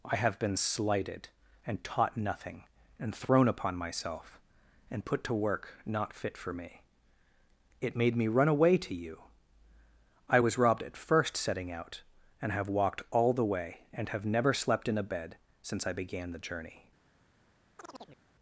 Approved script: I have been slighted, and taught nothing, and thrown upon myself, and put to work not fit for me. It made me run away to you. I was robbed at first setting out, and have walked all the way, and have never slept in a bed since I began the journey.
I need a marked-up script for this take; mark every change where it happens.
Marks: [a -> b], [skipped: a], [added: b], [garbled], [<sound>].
I have been slighted, and taught nothing, and thrown upon myself, and put to work not fit for me. It made me run away to you. I was robbed at first setting out, and have walked all the way, and have never slept in a bed since I began the journey. [chirp]